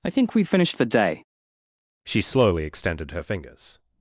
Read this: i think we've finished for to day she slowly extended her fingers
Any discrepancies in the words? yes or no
yes